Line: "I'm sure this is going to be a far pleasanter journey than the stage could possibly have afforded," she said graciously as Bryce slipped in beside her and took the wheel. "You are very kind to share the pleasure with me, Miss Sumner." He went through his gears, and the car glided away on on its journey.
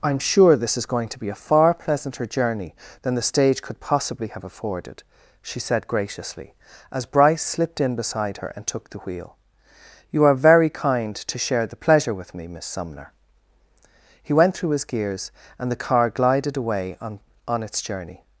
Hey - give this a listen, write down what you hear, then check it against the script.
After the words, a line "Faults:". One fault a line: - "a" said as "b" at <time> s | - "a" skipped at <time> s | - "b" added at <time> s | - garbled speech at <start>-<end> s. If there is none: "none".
"I'm sure this is going to be a far pleasanter journey than the stage could possibly have afforded," she said graciously as Bryce slipped in beside her and took the wheel. "You are very kind to share the pleasure with me, Miss Sumner." He went through his gears, and the car glided away on on its journey.
Faults:
none